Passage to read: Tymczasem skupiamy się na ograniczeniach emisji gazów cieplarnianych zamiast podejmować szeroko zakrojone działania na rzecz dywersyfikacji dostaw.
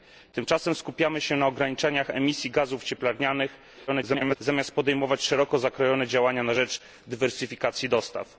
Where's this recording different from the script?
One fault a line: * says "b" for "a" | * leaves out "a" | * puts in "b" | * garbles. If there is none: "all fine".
* garbles